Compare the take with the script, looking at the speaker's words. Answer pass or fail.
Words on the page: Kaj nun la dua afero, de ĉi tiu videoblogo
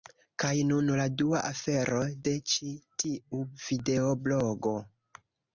pass